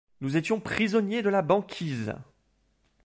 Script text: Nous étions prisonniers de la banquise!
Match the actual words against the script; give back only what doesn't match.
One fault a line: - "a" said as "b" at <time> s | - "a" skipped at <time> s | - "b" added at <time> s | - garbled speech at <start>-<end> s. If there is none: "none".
none